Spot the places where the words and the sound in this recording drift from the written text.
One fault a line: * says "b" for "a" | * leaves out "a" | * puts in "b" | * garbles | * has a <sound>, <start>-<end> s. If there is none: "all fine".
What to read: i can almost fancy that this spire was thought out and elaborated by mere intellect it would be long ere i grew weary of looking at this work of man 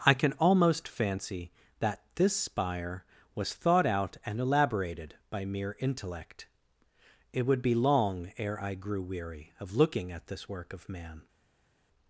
all fine